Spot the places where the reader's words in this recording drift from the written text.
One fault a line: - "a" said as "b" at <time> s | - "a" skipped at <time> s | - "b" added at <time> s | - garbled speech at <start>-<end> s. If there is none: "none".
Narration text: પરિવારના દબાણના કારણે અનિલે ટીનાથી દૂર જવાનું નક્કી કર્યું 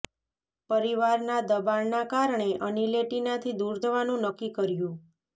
none